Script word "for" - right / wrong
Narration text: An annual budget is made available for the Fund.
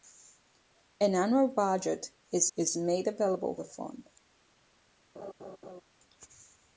wrong